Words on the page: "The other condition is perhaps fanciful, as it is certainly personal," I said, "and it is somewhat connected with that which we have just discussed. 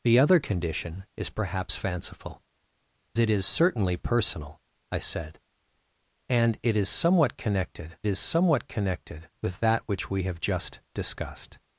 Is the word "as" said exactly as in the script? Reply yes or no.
no